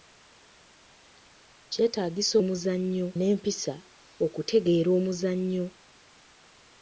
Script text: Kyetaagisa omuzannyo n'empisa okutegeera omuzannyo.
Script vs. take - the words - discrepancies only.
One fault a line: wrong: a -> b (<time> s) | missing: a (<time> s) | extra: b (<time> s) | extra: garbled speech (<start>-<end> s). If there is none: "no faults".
no faults